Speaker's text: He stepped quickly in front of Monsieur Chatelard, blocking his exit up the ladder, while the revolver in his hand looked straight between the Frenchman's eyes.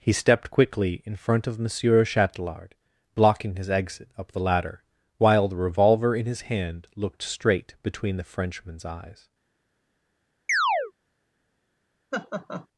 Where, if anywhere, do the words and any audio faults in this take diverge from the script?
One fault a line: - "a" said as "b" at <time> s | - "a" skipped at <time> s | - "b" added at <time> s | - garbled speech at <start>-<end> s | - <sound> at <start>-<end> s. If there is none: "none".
- chirp at 10.5-10.9 s
- laugh at 12.1-12.7 s